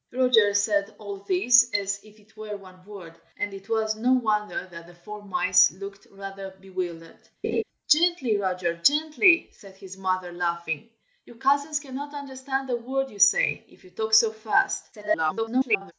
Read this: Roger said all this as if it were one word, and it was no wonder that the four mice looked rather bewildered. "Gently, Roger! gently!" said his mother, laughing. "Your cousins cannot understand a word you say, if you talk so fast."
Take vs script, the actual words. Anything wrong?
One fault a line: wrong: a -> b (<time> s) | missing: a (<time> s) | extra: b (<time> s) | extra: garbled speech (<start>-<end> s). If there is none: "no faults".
extra: garbled speech (14.9-15.9 s)